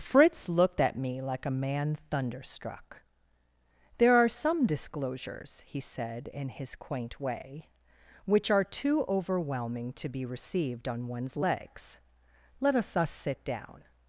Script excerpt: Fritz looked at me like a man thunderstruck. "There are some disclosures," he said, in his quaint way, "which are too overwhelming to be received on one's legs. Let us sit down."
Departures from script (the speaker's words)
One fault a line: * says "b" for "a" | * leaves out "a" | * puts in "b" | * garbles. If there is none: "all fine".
* puts in "us"